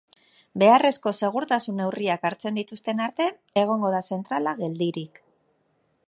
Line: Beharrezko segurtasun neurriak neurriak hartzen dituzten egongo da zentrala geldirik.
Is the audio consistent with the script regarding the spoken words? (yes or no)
no